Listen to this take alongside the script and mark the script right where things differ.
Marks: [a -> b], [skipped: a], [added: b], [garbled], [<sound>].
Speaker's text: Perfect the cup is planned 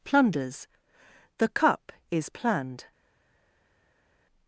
[Perfect -> Plunders] the cup is planned